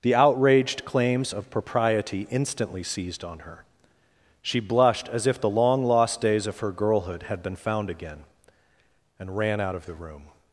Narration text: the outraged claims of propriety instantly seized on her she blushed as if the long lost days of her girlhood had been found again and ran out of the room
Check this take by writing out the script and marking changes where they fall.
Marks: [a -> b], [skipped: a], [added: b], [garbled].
the outraged claims of propriety instantly seized on her she blushed as if the long lost days of her girlhood had been found again and ran out of the room